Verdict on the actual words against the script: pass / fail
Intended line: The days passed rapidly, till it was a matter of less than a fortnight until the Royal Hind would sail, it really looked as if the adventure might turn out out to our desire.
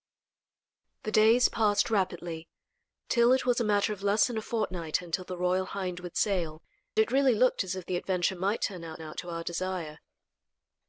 pass